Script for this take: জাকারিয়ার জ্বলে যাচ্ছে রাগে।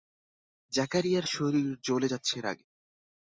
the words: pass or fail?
fail